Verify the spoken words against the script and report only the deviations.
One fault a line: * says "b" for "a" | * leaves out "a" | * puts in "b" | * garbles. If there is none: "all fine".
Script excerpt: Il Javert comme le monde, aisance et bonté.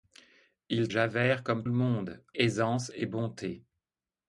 all fine